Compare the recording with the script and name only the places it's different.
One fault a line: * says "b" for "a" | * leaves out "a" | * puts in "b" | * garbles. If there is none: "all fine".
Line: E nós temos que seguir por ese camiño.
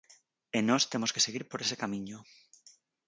all fine